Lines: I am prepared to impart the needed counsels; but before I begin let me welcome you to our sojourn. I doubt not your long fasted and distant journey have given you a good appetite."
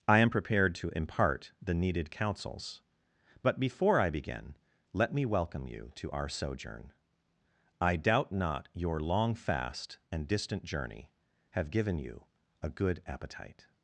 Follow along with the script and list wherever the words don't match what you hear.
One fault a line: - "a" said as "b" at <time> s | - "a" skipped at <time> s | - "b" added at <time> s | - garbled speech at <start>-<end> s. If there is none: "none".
- "fasted" said as "fast" at 9.4 s